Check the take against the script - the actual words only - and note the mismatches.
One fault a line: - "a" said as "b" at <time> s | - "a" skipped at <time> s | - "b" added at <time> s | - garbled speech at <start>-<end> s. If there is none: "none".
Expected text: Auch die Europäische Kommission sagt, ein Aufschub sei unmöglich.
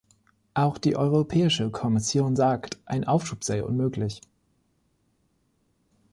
none